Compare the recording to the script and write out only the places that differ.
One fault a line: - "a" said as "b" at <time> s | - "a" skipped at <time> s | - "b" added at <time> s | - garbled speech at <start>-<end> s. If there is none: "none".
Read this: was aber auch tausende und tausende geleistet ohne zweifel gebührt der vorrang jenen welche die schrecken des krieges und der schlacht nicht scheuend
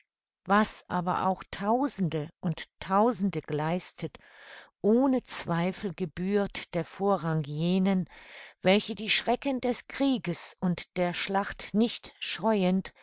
none